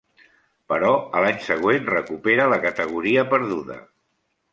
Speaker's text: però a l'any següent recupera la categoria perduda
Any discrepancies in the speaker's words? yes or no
no